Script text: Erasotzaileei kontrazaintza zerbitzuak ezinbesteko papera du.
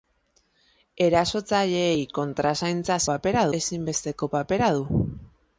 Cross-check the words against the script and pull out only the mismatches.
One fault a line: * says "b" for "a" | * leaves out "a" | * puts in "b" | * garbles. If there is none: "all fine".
* says "papera" for "zerbitzuak"